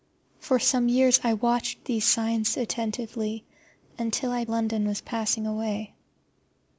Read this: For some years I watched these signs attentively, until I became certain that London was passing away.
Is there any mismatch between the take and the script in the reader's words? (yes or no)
yes